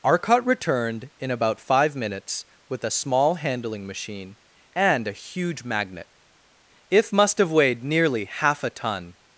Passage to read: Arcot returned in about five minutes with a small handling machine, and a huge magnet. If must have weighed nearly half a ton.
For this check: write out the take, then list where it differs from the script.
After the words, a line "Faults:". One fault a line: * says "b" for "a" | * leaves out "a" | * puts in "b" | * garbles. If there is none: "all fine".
Arcot returned in about five minutes with a small handling machine, and a huge magnet. If must have weighed nearly half a ton.
Faults:
all fine